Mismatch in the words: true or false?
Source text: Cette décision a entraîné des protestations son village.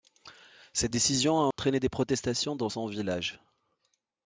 true